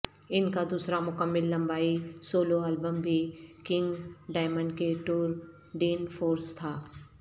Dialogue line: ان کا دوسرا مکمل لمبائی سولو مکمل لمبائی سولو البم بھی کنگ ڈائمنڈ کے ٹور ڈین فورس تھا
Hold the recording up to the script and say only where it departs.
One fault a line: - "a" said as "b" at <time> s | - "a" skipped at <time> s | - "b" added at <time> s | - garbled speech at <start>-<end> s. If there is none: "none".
- "مکمل لمبائی سولو" skipped at 2.6 s